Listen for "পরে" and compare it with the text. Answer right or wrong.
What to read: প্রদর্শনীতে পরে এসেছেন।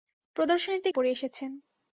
right